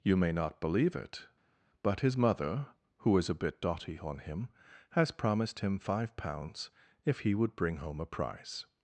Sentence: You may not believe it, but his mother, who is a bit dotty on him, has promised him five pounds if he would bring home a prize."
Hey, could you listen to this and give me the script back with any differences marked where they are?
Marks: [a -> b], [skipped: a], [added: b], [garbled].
You may not believe it, but his mother, who is a bit dotty on him, has promised him five pounds if he would bring home a prize."